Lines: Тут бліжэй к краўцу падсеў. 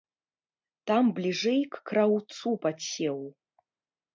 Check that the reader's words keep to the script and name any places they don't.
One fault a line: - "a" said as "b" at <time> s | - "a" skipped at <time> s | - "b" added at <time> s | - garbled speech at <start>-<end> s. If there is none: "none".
- "Тут" said as "Там" at 0.9 s